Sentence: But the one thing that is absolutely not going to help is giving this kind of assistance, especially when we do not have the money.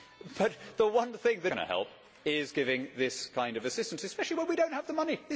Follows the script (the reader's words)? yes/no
no